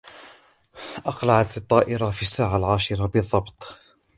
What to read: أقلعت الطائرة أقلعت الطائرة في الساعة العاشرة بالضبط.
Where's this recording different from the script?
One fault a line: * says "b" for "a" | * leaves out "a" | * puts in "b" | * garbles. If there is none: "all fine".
* leaves out "أقلعت الطائرة"